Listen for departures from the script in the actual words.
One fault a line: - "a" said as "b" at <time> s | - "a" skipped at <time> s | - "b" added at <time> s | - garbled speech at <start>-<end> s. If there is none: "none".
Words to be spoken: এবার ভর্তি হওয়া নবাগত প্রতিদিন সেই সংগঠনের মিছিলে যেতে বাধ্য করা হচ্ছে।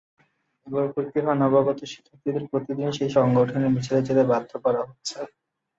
- "শিক্ষার্থীদের" added at 1.8 s